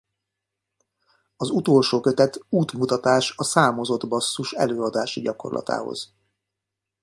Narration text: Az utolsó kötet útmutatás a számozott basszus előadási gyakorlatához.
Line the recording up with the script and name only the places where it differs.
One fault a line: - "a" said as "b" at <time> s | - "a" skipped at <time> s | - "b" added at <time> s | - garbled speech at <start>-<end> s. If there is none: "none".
none